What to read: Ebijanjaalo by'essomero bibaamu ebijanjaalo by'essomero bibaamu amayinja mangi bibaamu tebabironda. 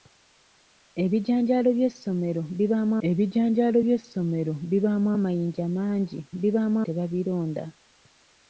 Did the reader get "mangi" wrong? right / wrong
right